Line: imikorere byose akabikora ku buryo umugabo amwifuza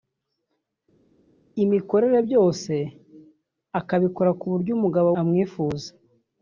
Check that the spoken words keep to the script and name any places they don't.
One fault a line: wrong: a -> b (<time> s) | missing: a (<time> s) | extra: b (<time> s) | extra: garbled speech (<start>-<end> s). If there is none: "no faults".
no faults